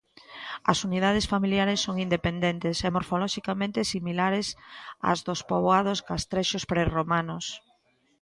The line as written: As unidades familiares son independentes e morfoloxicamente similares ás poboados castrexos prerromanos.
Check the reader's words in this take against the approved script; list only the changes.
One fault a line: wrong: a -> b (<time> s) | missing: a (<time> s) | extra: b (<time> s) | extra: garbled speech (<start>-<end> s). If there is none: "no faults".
extra: dos (5.3 s)